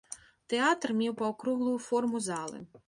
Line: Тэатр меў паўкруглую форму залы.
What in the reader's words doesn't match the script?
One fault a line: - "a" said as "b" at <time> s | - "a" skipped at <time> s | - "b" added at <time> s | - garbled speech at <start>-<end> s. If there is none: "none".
none